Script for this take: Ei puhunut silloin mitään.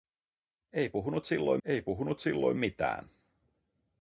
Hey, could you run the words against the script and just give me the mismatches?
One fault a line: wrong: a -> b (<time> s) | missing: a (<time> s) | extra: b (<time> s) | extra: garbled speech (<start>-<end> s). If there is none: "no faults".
extra: ei puhunut silloin (1.6 s)